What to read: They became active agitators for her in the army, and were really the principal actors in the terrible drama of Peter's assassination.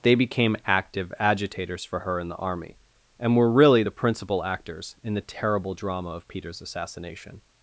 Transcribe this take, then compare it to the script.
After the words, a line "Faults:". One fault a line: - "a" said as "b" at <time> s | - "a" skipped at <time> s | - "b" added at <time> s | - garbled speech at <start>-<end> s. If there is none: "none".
They became active agitators for her in the army, and were really the principal actors in the terrible drama of Peter's assassination.
Faults:
none